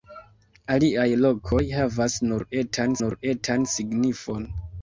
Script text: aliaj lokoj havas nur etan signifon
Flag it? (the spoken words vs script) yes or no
yes